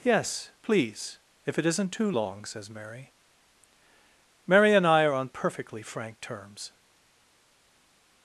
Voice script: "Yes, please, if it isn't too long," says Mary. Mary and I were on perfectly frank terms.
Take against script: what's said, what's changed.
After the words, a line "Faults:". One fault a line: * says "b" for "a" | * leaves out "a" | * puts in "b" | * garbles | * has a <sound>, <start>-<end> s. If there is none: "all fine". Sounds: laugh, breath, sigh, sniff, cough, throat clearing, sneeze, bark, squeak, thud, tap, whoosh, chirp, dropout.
"Yes, please, if it isn't too long," says Mary. Mary and I are on perfectly frank terms.
Faults:
* says "are" for "were"